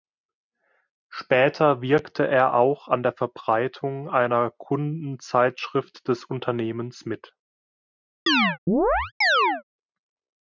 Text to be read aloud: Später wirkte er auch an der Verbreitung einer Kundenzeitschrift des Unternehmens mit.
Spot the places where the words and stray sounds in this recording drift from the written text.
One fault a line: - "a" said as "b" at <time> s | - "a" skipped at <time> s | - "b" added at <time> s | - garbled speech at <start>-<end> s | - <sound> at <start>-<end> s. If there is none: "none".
- chirp at 8.3-9.6 s